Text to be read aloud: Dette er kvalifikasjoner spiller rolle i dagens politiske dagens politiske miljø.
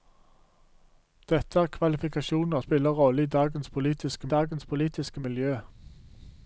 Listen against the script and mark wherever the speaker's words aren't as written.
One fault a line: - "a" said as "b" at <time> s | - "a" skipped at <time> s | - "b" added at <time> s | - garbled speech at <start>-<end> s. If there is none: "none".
none